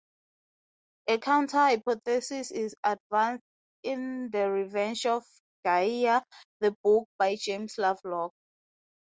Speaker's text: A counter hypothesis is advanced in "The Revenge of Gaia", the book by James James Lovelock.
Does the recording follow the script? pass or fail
fail